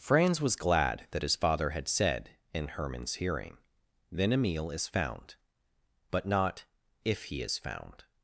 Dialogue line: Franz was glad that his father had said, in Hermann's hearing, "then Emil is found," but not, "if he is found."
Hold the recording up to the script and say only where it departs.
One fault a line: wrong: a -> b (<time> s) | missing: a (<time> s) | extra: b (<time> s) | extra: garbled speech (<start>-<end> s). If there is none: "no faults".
no faults